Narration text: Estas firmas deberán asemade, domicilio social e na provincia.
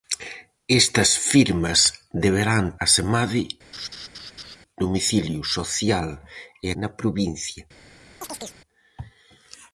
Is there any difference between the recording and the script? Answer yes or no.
no